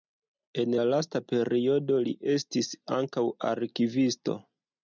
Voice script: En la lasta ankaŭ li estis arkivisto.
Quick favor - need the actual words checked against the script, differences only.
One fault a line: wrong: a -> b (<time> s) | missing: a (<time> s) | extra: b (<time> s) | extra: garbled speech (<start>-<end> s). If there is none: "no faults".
wrong: ankaŭ -> periodo (1.3 s)
extra: ankaŭ (3.0 s)